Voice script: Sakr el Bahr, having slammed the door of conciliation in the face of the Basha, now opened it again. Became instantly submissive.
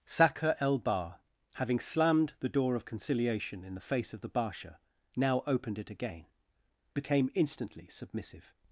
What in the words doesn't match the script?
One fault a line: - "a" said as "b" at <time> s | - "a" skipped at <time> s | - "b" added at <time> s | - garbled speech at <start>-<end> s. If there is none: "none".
none